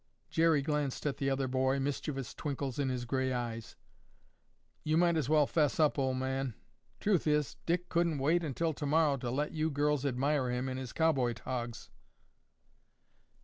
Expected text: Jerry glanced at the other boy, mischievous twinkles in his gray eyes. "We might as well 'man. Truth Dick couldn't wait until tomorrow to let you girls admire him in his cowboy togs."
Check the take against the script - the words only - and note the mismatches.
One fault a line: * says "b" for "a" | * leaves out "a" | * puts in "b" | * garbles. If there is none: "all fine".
* says "You" for "We"
* puts in "fess up old"
* puts in "is"